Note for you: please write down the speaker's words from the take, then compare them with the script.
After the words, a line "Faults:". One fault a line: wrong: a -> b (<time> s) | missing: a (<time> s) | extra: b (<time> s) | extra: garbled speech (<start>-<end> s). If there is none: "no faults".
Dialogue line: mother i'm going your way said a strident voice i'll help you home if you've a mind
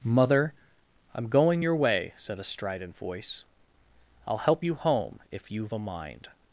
mother i'm going your way said a strident voice i'll help you home if you've a mind
Faults:
no faults